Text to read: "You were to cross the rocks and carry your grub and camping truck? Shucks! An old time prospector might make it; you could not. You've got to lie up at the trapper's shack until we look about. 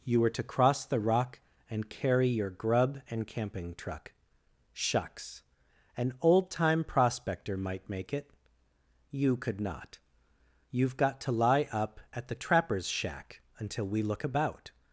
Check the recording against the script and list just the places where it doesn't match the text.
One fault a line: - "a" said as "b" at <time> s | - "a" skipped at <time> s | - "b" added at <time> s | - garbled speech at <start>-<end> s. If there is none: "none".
- "rocks" said as "rock" at 1.0 s